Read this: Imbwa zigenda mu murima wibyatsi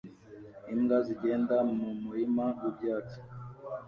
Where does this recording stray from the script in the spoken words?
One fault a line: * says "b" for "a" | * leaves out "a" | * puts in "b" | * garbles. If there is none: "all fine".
all fine